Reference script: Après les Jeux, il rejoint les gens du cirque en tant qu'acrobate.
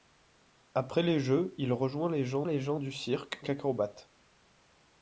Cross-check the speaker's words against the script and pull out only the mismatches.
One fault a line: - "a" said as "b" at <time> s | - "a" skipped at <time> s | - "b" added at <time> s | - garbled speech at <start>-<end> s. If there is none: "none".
- "les gens" added at 2.4 s
- "en tant" skipped at 3.4 s